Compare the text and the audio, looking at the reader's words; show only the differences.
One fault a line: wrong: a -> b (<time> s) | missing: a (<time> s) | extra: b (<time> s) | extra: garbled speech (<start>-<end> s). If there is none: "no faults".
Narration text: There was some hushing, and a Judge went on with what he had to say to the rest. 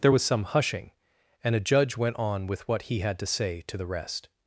no faults